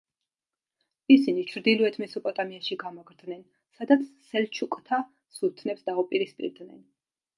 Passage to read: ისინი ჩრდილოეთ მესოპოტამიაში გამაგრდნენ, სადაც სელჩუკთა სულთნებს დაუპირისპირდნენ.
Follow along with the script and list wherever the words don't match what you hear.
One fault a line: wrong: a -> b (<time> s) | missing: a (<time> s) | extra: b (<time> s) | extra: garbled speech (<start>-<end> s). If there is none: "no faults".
no faults